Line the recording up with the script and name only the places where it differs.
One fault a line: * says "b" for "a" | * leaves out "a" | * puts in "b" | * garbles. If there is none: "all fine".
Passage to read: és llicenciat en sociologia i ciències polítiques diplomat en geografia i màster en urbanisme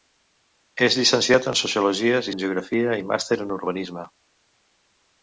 * leaves out "ciències polítiques diplomat"